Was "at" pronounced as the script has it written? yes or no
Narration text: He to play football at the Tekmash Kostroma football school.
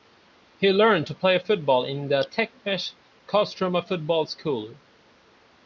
no